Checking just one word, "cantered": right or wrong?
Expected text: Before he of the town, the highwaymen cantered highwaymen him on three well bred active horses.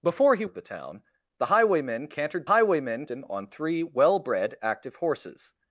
right